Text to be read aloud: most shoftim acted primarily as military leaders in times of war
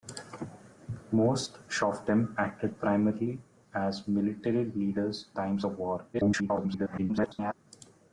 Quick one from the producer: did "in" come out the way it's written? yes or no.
no